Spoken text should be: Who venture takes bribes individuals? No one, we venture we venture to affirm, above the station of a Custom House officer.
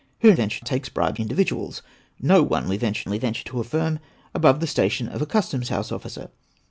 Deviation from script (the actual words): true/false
false